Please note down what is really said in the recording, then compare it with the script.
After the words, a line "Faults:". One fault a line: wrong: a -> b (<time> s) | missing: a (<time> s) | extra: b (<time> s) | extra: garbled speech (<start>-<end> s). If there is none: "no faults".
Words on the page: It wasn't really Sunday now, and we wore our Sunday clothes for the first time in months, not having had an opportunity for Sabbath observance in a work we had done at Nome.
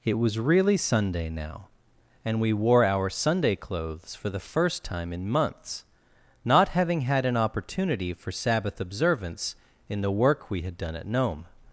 It was really Sunday now, and we wore our Sunday clothes for the first time in months, not having had an opportunity for Sabbath observance in the work we had done at Nome.
Faults:
wrong: wasn't -> was (0.2 s)
wrong: a -> the (10.0 s)